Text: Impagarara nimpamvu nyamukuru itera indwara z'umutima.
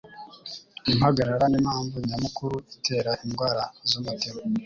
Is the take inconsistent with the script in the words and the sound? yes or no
no